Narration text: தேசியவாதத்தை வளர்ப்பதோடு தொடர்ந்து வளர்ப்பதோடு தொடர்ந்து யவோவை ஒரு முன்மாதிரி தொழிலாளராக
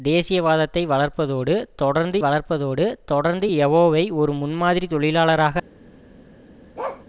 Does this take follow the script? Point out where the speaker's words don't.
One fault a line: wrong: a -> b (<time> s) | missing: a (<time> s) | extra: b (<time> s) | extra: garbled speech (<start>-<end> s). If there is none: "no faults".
no faults